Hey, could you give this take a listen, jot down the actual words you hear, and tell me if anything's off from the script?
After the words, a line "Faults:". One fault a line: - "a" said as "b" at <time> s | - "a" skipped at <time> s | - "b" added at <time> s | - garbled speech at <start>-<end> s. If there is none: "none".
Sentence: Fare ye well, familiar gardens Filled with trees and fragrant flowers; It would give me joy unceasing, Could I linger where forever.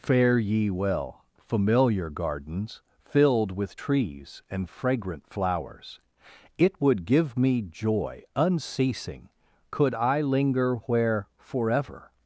Fare ye well, familiar gardens Filled with trees and fragrant flowers; It would give me joy unceasing, Could I linger where forever.
Faults:
none